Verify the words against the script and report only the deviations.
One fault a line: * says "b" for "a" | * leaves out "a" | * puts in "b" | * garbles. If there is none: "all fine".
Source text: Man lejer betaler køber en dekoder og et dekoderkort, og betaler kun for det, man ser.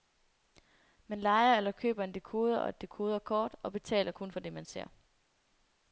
* says "eller" for "betaler"